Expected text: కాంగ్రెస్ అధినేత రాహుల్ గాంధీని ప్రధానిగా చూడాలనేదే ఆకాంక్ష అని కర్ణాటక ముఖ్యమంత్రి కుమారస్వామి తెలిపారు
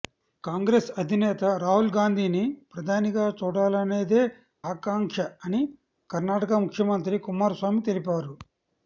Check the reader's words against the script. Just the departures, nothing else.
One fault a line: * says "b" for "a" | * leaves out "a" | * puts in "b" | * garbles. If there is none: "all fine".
all fine